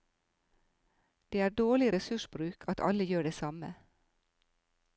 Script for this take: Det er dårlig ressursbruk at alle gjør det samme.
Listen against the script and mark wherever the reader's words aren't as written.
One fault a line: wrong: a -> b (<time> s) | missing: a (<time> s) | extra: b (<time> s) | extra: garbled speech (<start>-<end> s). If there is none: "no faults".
no faults